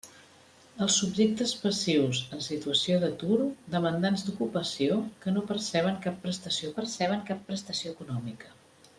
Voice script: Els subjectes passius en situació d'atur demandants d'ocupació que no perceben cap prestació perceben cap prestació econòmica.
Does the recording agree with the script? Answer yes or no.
yes